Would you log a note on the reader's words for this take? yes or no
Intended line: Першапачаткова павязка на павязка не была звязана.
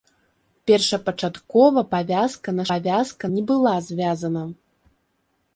no